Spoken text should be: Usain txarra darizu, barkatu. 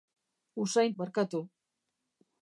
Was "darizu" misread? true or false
true